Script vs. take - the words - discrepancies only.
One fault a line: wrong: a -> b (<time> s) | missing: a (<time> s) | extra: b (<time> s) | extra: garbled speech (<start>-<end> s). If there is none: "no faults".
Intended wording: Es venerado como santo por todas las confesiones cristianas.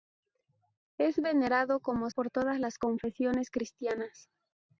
missing: santo (2.1 s)